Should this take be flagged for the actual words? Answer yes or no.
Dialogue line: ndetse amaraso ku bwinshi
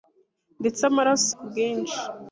no